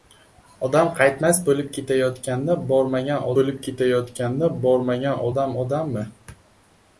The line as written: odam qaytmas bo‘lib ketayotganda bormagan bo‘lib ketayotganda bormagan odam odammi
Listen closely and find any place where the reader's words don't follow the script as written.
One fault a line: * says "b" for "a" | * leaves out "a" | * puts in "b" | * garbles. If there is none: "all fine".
all fine